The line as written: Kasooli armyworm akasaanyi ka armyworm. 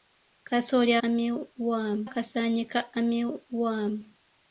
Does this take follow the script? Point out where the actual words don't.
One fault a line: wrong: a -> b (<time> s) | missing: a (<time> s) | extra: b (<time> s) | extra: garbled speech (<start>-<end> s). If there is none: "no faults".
no faults